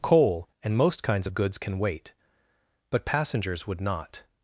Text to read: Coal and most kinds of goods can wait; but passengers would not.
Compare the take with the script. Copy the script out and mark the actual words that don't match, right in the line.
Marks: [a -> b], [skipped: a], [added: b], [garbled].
Coal and most kinds of goods can wait; but passengers would not.